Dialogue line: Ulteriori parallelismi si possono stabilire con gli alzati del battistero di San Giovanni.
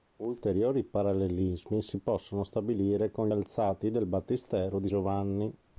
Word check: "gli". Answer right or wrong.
wrong